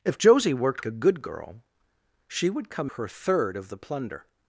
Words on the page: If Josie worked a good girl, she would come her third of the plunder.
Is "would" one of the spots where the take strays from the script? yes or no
no